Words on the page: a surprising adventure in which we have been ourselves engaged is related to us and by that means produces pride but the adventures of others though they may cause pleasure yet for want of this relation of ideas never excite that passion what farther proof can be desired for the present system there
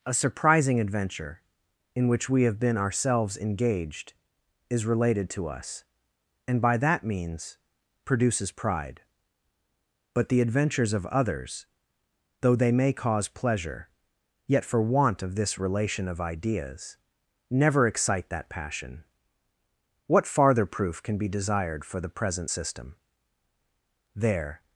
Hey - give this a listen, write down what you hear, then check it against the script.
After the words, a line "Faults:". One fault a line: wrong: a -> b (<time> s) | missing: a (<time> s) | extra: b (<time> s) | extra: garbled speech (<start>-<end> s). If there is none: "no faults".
a surprising adventure in which we have been ourselves engaged is related to us and by that means produces pride but the adventures of others though they may cause pleasure yet for want of this relation of ideas never excite that passion what farther proof can be desired for the present system there
Faults:
no faults